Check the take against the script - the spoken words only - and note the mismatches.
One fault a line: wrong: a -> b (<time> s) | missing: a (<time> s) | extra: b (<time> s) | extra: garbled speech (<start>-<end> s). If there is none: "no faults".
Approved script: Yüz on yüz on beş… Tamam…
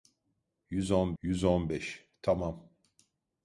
no faults